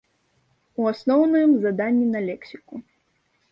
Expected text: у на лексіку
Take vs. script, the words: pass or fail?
fail